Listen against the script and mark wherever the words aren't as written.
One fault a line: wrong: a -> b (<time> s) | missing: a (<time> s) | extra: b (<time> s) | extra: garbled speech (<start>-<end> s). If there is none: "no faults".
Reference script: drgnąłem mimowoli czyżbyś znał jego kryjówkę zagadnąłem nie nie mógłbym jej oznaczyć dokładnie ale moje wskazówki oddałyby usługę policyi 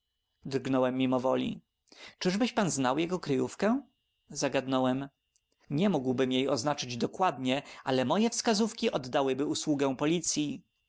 extra: pan (2.5 s)
missing: nie (5.9 s)